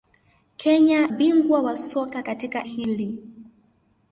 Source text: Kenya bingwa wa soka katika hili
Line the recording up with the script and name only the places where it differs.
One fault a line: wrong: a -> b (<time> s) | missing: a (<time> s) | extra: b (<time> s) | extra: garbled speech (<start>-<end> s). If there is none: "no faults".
no faults